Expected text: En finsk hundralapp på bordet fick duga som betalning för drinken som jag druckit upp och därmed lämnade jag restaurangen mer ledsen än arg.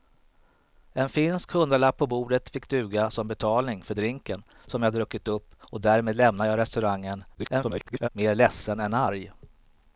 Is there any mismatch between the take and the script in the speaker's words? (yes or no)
yes